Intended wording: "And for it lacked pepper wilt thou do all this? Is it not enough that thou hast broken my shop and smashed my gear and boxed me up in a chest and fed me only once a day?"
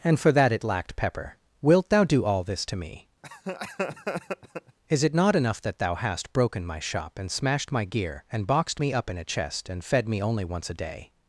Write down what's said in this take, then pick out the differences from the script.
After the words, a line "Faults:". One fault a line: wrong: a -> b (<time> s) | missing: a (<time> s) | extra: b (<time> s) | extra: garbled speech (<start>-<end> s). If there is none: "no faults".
"And for that it lacked pepper wilt thou do all this to me? Is it not enough that thou hast broken my shop and smashed my gear and boxed me up in a chest and fed me only once a day?"
Faults:
extra: that (0.3 s)
extra: to me (2.6 s)